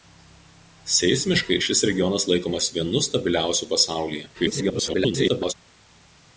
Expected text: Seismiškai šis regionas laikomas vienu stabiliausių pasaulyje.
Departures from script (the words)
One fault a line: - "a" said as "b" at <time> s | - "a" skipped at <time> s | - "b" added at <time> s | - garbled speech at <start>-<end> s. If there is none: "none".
- garbled speech at 4.3-5.5 s